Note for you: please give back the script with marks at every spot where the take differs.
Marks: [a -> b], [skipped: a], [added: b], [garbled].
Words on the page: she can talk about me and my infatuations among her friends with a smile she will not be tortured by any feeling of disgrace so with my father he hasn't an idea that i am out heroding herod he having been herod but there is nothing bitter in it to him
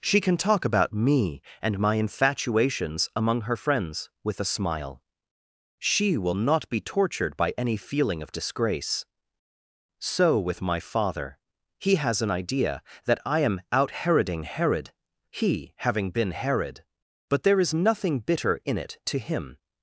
she can talk about me and my infatuations among her friends with a smile she will not be tortured by any feeling of disgrace so with my father he [hasn't -> has] an idea that i am out heroding herod he having been herod but there is nothing bitter in it to him